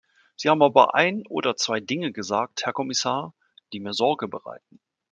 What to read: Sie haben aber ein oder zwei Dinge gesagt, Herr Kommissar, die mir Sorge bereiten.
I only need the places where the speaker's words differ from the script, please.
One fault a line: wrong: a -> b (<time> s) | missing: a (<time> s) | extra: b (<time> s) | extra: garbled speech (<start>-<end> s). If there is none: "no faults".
no faults